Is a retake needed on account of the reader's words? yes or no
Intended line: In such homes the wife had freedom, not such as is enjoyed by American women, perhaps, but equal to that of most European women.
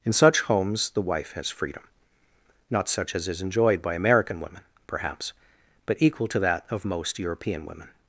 yes